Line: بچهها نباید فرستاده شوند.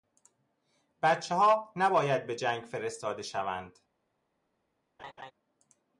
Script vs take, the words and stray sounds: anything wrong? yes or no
yes